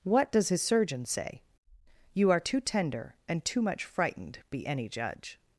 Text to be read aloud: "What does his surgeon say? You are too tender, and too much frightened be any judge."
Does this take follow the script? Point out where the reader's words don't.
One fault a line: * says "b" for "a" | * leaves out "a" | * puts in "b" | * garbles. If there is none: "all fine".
all fine